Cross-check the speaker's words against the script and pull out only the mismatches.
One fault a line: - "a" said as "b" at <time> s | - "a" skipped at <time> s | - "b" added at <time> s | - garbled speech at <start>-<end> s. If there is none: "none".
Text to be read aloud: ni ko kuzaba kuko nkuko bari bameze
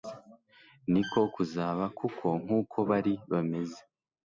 none